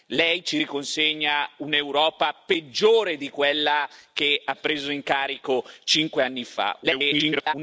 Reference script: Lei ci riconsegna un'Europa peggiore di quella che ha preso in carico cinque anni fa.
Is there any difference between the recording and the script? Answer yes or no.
yes